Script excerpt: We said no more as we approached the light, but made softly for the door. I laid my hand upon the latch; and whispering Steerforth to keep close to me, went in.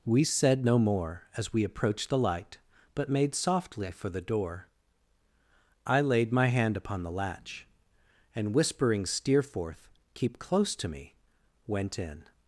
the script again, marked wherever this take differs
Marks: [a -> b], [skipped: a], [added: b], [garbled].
We said no more as we approached the light, but made softly for the door. I laid my hand upon the latch; and whispering Steerforth [skipped: to] keep close to me, went in.